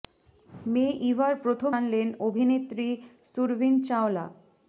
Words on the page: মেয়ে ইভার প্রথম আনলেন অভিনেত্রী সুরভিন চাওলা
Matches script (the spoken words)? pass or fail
pass